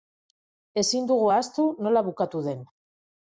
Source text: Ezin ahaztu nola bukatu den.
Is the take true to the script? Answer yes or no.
no